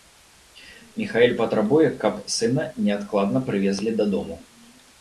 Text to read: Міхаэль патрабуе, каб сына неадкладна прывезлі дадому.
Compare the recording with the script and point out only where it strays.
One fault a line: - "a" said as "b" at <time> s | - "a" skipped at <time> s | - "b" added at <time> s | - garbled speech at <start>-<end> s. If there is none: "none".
none